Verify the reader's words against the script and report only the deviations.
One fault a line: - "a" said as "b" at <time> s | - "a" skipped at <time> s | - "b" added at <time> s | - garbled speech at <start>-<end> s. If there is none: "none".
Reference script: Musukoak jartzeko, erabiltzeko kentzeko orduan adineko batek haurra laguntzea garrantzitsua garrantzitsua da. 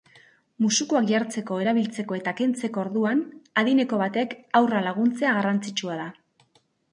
- "eta" added at 2.2 s
- "garrantzitsua" skipped at 6.0 s